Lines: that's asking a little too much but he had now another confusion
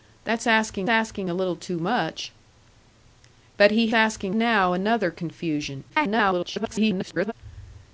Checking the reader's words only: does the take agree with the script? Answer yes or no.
no